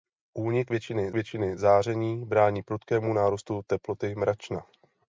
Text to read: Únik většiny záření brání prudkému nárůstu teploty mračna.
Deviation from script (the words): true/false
true